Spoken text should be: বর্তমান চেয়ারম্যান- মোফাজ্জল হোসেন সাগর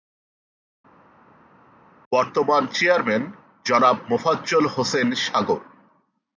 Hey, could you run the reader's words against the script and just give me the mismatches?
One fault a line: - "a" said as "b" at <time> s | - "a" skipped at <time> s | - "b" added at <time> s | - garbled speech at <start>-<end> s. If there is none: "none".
- "জনাব" added at 3.7 s